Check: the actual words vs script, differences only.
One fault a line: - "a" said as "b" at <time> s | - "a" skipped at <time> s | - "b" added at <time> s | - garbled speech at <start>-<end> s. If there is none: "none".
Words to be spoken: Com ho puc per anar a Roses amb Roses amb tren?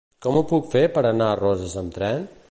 - "fer" added at 0.7 s
- "Roses amb" skipped at 1.9 s